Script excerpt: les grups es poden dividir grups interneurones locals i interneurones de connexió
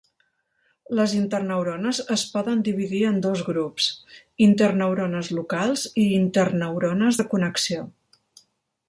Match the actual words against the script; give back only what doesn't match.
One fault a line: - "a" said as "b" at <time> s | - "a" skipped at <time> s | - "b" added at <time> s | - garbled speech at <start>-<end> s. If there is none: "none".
- "grups" said as "interneurones" at 1.2 s
- "en dos" added at 3.1 s